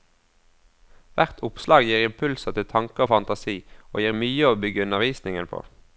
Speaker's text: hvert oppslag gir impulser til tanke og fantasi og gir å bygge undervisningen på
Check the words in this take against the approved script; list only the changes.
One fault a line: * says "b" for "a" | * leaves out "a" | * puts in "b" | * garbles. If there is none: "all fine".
* puts in "mye"